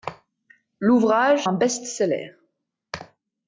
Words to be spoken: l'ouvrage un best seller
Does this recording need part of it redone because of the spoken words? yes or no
no